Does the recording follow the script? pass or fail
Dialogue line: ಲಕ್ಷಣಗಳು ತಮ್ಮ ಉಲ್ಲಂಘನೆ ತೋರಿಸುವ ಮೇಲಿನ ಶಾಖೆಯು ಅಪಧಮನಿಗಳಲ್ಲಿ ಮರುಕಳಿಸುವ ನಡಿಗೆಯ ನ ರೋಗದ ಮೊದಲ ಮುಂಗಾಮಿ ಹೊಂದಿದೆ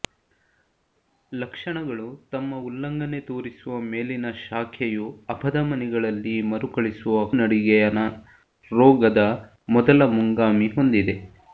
pass